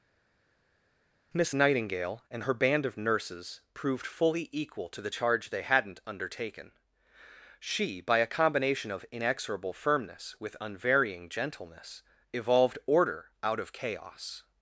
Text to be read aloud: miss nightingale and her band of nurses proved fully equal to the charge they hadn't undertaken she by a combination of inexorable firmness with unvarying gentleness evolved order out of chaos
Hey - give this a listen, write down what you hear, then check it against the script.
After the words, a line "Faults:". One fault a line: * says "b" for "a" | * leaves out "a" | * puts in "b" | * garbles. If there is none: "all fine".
miss nightingale and her band of nurses proved fully equal to the charge they hadn't undertaken she by a combination of inexorable firmness with unvarying gentleness evolved order out of chaos
Faults:
all fine